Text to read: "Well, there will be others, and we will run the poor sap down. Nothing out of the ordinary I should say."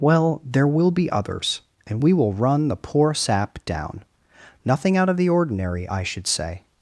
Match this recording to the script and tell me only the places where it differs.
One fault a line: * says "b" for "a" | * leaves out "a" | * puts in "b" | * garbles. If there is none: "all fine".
all fine